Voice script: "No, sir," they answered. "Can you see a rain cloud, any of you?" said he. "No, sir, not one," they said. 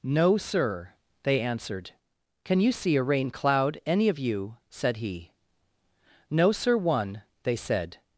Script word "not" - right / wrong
wrong